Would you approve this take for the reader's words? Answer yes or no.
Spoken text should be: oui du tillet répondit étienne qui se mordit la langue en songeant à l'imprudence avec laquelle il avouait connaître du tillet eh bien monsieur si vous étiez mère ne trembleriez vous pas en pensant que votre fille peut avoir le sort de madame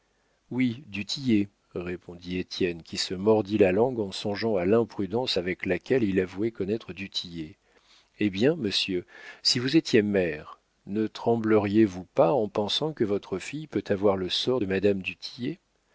yes